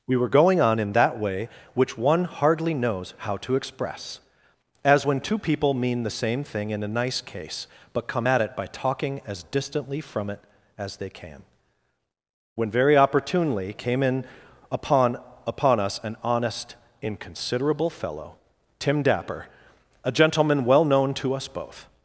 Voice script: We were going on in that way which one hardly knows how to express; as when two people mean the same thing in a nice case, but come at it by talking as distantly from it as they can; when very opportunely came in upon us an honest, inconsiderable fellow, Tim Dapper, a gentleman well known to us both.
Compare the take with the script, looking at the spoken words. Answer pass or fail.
fail